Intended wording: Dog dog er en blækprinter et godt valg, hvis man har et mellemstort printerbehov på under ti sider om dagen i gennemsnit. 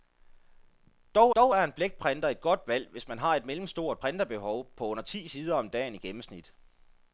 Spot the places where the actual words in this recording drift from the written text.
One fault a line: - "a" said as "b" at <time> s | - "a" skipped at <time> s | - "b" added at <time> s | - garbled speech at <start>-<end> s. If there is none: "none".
none